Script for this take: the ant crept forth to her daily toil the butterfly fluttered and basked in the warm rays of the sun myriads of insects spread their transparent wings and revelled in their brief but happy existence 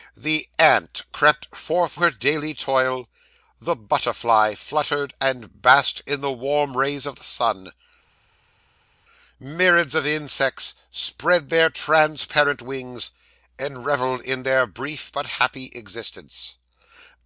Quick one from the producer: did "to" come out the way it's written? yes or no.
no